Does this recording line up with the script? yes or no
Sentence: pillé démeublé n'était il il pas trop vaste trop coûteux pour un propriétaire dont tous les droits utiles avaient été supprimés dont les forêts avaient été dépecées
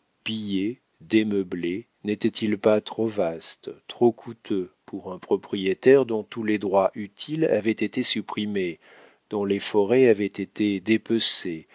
no